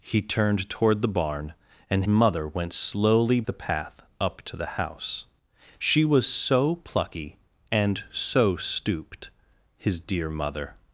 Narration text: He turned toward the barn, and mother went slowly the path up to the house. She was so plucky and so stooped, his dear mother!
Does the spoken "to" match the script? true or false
true